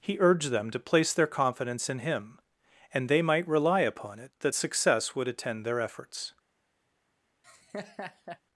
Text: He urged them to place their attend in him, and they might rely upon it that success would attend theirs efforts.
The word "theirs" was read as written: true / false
false